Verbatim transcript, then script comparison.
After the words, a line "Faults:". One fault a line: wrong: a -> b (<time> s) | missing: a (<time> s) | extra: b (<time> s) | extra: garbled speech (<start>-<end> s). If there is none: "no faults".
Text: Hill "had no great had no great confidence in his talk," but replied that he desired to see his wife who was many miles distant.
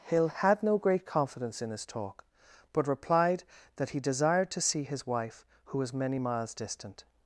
Hill "had no great confidence in his talk," but replied that he desired to see his wife who was many miles distant.
Faults:
missing: had no great (1.1 s)